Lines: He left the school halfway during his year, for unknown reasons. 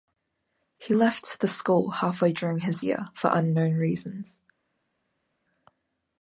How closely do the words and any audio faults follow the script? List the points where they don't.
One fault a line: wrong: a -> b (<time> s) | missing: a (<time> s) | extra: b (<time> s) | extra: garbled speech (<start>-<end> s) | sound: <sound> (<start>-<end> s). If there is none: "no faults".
no faults